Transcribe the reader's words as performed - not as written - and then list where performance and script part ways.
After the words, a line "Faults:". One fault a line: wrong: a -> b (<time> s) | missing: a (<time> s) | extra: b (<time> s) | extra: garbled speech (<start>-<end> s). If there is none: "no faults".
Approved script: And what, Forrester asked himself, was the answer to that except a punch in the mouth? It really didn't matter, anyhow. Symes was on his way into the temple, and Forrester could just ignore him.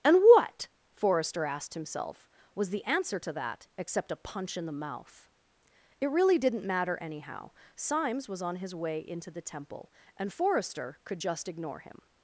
And what, Forrester asked himself, was the answer to that except a punch in the mouth? It really didn't matter, anyhow. Symes was on his way into the temple, and Forrester could just ignore him.
Faults:
no faults